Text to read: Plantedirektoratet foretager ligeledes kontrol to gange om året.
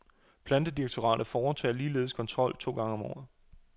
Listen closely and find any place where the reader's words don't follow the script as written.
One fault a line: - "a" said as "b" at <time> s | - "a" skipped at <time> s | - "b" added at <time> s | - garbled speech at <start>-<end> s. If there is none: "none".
none